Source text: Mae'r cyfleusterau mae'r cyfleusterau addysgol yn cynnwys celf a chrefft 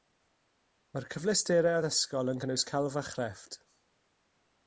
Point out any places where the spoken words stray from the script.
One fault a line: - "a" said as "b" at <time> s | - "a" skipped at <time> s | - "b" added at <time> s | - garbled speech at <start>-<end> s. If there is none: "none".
- "mae'r cyfleusterau" skipped at 1.8 s